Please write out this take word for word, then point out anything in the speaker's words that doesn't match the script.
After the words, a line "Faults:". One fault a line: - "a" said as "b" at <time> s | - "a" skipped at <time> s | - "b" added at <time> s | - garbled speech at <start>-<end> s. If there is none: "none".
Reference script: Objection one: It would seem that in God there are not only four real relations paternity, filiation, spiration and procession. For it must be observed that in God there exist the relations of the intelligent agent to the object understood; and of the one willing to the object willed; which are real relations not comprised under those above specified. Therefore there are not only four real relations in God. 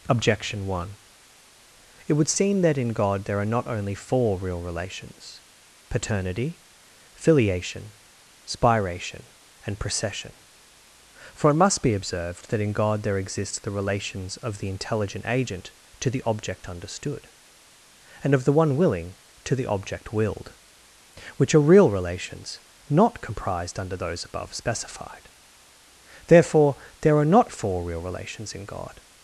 Objection one: It would seem that in God there are not only four real relations paternity, filiation, spiration and procession. For it must be observed that in God there exist the relations of the intelligent agent to the object understood; and of the one willing to the object willed; which are real relations not comprised under those above specified. Therefore there are not four real relations in God.
Faults:
- "only" skipped at 27.5 s